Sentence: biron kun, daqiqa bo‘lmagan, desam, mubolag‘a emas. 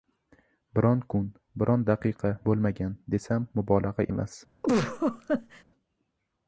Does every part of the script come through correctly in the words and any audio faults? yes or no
no